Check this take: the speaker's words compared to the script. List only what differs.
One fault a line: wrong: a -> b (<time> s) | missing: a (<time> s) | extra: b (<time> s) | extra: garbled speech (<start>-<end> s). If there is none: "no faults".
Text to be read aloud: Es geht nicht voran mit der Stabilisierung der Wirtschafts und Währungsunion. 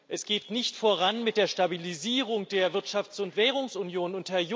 no faults